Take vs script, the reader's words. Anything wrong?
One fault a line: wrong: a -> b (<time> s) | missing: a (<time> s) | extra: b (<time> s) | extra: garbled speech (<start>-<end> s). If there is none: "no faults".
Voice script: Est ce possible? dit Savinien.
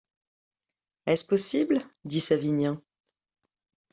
no faults